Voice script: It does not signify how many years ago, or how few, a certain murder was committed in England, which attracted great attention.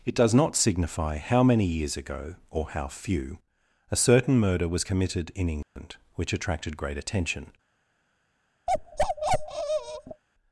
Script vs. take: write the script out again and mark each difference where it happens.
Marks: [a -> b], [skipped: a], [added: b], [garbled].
It does not signify how many years ago, or how few, a certain murder was committed in England, which attracted great attention.